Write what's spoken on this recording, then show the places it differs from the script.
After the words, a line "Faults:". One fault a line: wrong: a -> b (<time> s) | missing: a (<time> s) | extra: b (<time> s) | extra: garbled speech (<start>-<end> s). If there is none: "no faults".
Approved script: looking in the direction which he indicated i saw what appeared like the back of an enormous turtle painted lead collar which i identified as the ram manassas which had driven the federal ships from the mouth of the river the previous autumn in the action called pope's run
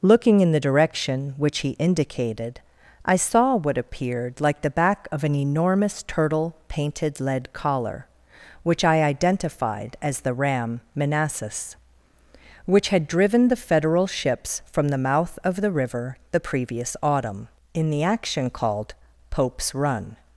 looking in the direction which he indicated i saw what appeared like the back of an enormous turtle painted lead collar which i identified as the ram manassas which had driven the federal ships from the mouth of the river the previous autumn in the action called pope's run
Faults:
no faults